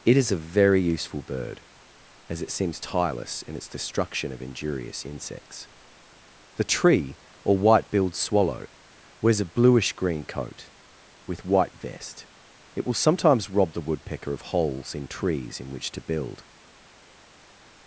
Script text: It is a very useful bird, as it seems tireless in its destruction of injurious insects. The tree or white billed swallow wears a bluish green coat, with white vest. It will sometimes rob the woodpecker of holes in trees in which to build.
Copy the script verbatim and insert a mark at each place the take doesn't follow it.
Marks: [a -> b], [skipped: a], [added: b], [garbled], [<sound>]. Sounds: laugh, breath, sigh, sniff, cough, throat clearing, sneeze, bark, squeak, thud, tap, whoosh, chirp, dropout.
It is a very useful bird, as it seems tireless in its destruction of injurious insects. The tree or white billed swallow wears a bluish green coat, with white vest. It will sometimes rob the woodpecker of holes in trees in which to build.